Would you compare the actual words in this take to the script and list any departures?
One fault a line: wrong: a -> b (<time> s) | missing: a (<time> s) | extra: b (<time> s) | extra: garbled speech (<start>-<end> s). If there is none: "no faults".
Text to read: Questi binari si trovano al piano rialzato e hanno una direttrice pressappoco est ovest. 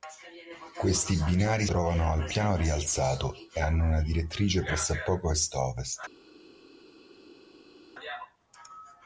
missing: si (1.7 s)